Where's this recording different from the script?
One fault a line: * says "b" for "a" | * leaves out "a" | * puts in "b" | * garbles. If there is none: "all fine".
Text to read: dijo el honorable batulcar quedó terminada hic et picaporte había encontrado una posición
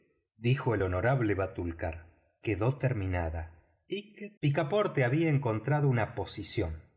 all fine